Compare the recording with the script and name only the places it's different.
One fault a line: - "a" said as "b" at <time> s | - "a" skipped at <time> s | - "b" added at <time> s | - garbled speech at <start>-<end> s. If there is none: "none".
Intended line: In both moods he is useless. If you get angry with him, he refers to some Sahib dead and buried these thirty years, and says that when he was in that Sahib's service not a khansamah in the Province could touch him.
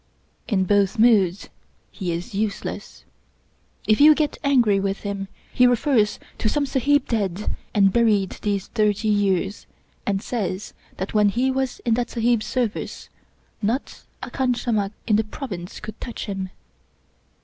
none